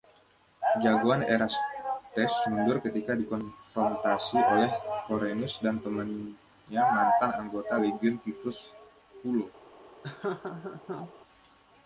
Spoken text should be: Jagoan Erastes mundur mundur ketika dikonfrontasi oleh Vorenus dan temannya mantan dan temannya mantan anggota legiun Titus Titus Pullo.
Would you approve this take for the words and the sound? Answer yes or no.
no